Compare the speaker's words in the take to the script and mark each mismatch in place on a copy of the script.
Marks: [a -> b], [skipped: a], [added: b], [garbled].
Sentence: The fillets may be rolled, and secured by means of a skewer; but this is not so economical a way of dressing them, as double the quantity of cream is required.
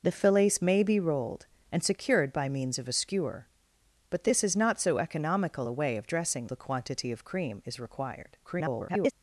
The fillets may be rolled, and secured by means of a skewer; but this is not so economical a way of dressing [skipped: them, as double] the quantity of cream is required. [garbled]